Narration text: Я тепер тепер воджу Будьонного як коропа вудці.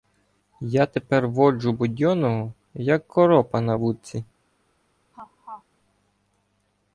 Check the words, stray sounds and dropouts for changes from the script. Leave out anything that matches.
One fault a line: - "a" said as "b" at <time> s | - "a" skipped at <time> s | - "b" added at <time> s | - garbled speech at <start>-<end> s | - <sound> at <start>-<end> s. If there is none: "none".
- "тепер" skipped at 1.3 s
- "на" added at 3.6 s
- laugh at 5.1-5.6 s